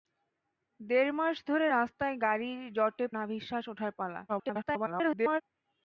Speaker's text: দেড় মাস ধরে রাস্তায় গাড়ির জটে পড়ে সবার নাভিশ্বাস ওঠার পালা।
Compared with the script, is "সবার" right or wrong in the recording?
wrong